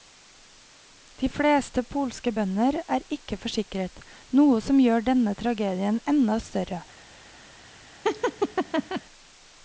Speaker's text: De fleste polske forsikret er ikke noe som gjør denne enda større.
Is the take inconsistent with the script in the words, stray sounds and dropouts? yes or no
yes